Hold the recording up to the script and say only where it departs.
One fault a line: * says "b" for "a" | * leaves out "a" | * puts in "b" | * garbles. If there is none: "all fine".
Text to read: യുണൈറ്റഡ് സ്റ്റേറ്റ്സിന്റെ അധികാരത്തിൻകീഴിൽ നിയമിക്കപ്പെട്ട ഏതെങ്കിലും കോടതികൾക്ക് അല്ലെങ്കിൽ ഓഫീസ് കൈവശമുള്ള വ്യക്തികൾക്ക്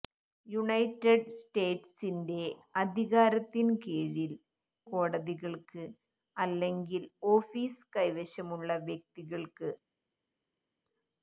* leaves out "നിയമിക്കപ്പെട്ട ഏതെങ്കിലും"